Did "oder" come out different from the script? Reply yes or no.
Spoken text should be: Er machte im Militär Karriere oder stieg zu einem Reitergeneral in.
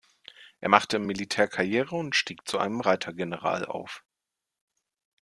yes